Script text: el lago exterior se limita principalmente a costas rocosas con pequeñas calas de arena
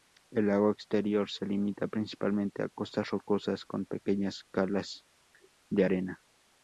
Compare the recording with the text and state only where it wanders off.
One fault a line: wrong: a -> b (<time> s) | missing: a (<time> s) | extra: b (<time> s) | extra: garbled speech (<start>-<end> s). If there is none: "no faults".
no faults